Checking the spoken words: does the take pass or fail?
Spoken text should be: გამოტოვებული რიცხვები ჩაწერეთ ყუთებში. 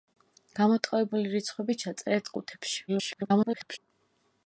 fail